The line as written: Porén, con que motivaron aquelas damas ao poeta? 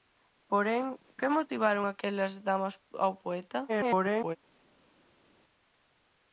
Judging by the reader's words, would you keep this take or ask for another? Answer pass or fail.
fail